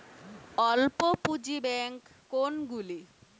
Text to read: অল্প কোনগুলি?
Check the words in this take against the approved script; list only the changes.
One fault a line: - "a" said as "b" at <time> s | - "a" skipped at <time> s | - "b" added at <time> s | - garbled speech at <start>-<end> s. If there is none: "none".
- "পুঁজি ব্যাঙ্ক" added at 1.2 s